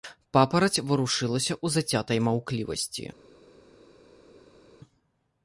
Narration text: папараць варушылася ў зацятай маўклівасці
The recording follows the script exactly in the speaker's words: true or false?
true